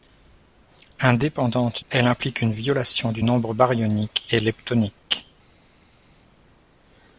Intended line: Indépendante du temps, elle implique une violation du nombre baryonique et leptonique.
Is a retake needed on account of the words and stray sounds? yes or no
yes